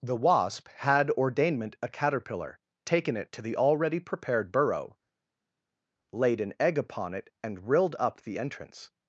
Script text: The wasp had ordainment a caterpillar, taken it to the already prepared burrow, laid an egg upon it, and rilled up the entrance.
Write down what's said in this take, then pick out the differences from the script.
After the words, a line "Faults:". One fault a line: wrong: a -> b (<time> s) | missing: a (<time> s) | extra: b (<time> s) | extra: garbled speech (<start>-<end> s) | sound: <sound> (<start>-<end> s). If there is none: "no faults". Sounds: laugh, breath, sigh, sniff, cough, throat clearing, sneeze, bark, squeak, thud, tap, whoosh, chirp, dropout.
The wasp had ordainment a caterpillar, taken it to the already prepared burrow, laid an egg upon it, and rilled up the entrance.
Faults:
no faults